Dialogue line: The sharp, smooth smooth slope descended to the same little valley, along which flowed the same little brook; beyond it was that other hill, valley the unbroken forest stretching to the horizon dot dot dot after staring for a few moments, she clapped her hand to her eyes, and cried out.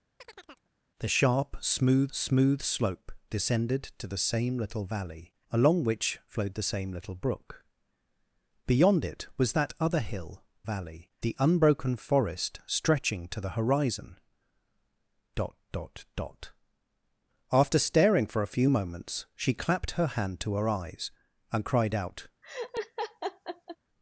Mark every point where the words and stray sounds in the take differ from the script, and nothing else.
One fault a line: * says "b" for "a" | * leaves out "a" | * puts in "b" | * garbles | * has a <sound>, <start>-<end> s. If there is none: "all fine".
* has a chirp, 0.2-0.7 s
* has a laugh, 22.4-23.8 s